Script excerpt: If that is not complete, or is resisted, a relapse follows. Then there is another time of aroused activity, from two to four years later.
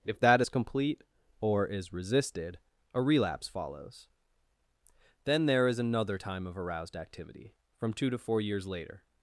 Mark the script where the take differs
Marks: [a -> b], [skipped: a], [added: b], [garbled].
If that is [skipped: not] complete, or is resisted, a relapse follows. Then there is another time of aroused activity, from two to four years later.